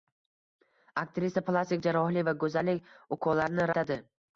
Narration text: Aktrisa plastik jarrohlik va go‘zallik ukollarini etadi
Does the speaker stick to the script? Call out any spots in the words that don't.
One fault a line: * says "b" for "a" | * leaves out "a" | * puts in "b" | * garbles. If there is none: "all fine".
all fine